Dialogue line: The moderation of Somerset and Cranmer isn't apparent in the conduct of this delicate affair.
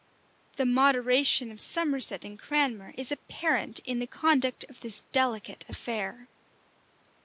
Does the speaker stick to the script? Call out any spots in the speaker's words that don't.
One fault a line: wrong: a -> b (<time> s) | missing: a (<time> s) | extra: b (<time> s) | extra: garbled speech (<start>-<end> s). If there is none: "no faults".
wrong: isn't -> is (3.0 s)